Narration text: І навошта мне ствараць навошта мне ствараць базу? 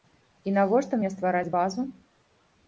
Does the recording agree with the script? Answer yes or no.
no